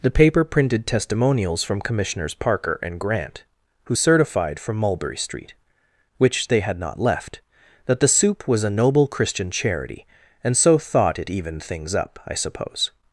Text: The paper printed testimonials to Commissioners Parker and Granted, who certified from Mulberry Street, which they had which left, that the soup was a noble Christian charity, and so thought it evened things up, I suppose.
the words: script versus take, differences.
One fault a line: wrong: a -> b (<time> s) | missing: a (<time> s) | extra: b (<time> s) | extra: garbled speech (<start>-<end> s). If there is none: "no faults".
wrong: to -> from (1.6 s)
wrong: Granted -> Grant (3.0 s)
wrong: which -> not (6.8 s)